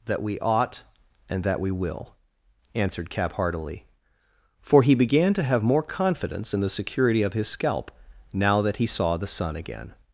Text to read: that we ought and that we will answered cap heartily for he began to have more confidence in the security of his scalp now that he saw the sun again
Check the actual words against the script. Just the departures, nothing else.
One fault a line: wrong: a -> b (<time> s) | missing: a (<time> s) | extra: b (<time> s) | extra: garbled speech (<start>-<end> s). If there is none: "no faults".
no faults